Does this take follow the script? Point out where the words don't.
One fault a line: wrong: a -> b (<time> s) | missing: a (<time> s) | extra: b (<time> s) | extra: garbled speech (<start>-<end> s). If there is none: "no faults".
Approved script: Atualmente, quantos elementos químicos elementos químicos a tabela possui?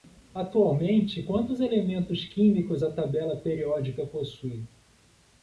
missing: elementos químicos (2.8 s)
extra: periódica (3.3 s)